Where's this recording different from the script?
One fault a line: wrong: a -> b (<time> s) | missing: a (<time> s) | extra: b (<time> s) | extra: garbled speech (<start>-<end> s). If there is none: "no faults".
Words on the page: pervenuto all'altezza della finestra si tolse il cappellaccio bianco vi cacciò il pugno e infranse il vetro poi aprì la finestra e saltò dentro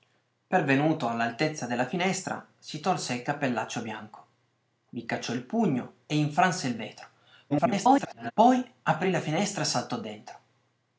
extra: garbled speech (7.5-8.3 s)